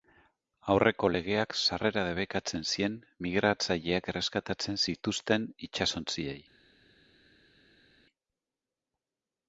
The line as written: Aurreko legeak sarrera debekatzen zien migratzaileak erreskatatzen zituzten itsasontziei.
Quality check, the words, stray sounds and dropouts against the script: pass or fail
pass